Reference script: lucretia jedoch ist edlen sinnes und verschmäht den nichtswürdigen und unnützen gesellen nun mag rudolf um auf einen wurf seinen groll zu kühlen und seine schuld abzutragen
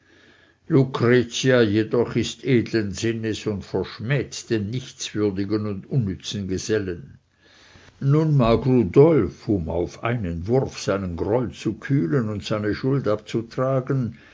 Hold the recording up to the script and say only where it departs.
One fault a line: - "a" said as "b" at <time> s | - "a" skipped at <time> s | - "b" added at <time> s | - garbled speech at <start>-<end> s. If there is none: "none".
none